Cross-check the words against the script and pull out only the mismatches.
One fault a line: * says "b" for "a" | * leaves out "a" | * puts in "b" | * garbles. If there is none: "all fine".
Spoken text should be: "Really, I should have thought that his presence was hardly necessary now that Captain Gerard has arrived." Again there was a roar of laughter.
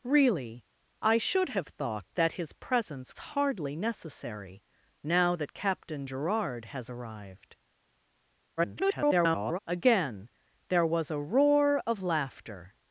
* leaves out "was"
* garbles